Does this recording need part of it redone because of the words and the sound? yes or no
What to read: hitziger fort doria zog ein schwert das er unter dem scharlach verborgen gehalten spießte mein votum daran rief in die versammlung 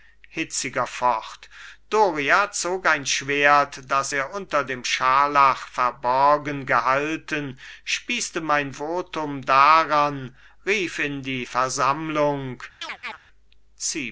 yes